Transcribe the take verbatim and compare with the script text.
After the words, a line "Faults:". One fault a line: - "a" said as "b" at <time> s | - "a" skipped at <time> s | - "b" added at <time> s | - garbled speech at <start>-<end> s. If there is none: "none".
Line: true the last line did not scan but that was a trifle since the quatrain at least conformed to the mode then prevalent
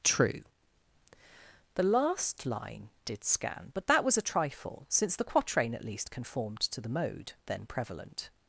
true the last line did scan but that was a trifle since the quatrain at least conformed to the mode then prevalent
Faults:
- "not" skipped at 3.2 s